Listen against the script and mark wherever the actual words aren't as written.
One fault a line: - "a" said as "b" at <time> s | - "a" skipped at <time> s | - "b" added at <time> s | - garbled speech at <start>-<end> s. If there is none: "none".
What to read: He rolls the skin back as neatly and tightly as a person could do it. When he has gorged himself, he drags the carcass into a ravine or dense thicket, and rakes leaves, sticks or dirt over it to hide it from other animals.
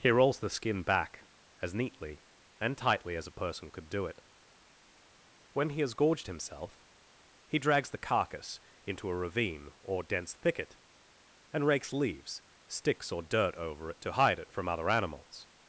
none